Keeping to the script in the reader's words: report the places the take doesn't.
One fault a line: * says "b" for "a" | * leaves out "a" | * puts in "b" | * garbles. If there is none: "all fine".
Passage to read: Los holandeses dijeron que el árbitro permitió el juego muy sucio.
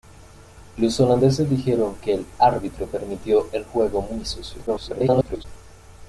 * garbles